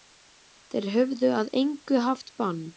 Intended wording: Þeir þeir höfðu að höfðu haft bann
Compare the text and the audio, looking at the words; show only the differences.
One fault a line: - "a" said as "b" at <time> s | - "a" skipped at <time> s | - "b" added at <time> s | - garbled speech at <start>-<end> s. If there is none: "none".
- "þeir" skipped at 0.9 s
- "höfðu" said as "engu" at 1.6 s